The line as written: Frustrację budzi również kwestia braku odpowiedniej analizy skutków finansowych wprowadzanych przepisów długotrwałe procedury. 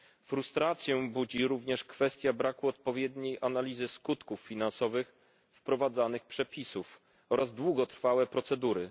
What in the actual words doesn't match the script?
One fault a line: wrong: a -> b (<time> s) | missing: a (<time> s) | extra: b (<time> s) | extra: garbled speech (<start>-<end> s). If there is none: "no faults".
extra: oraz (7.3 s)